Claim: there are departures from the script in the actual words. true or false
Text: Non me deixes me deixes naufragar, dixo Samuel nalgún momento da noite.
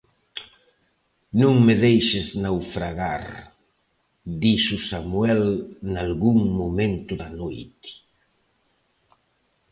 true